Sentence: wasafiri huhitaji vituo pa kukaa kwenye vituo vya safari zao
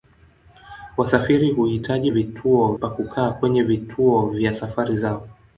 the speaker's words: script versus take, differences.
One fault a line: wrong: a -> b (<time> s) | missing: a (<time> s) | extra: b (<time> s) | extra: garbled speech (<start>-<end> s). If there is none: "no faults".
no faults